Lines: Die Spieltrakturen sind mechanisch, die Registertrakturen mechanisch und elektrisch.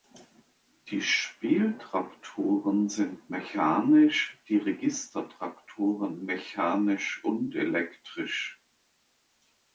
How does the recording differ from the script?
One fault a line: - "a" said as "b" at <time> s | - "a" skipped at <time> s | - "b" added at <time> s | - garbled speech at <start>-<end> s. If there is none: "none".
none